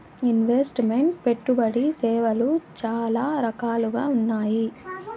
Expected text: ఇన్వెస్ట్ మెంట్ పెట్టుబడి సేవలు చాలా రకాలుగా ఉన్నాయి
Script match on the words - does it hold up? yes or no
yes